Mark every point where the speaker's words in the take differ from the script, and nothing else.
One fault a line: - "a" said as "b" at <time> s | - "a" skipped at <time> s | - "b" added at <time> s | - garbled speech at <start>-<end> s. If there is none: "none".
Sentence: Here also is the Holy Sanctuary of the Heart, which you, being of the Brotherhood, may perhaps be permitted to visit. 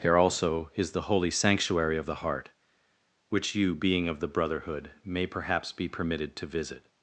none